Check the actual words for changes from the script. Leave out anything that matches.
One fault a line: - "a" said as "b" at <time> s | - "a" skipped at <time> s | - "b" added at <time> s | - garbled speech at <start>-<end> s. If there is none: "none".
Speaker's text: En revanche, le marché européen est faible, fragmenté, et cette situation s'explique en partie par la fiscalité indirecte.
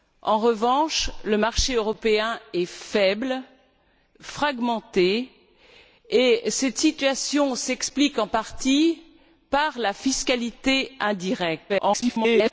- garbled speech at 11.7-12.5 s